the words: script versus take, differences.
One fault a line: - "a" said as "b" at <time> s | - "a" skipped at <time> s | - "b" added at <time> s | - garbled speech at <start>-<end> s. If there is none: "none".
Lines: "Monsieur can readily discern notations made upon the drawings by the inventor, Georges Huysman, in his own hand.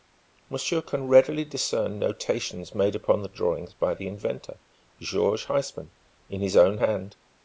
none